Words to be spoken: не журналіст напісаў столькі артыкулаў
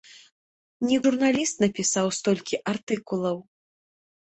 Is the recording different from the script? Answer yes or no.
no